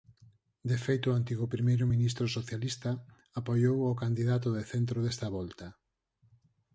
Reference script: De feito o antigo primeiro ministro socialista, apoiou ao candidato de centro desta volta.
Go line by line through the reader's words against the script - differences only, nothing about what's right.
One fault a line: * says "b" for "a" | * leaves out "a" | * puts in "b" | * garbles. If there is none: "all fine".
all fine